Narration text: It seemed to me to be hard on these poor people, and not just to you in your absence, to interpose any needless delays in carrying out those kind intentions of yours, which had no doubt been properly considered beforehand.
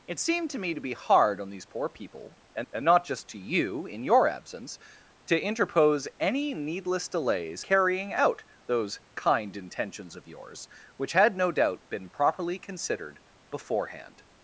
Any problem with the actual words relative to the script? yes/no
yes